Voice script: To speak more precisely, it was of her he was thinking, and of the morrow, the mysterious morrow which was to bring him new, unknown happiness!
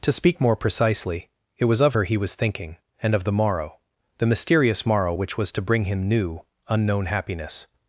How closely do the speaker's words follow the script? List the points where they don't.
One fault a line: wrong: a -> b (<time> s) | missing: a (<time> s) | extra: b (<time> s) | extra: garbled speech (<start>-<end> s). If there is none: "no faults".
no faults